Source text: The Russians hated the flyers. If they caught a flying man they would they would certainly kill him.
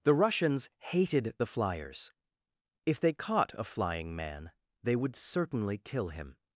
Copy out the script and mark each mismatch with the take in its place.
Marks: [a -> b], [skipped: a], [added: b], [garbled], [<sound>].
The Russians hated the flyers. If they caught a flying man they would [skipped: they would] certainly kill him.